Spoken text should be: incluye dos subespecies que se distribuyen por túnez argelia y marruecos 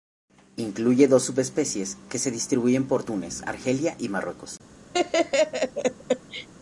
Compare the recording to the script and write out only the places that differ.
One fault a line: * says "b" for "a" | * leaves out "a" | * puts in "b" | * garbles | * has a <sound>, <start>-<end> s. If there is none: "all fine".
* has a laugh, 4.9-6.5 s